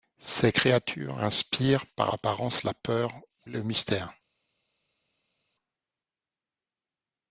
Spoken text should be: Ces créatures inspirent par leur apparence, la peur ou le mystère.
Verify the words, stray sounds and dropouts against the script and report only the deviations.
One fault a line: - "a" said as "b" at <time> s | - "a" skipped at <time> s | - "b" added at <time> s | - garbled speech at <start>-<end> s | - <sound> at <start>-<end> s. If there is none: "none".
- "leur" skipped at 2.1 s